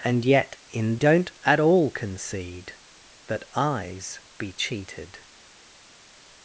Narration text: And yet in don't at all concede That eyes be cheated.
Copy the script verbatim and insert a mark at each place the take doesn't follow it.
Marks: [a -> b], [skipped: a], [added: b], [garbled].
And yet in don't at all concede That eyes be cheated.